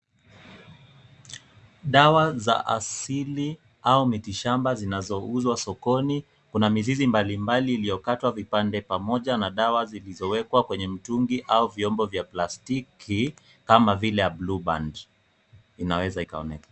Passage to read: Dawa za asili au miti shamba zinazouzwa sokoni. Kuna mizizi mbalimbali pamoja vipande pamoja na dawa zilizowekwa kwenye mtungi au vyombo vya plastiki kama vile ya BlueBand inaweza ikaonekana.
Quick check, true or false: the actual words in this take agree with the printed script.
false